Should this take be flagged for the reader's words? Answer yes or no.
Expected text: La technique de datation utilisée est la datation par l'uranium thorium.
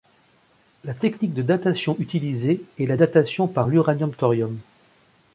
no